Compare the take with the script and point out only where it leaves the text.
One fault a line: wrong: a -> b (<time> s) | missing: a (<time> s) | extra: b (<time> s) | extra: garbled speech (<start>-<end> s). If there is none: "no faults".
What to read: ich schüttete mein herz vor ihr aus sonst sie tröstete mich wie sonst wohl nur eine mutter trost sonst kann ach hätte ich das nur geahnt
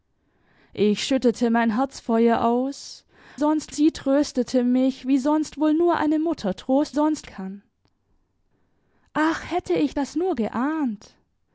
no faults